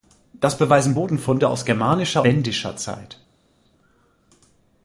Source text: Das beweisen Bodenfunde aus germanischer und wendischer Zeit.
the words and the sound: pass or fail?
fail